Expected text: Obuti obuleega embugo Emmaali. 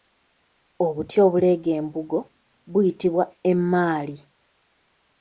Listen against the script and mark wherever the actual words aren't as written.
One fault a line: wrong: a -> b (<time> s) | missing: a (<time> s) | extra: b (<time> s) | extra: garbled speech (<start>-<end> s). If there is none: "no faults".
extra: buyitibwa (2.7 s)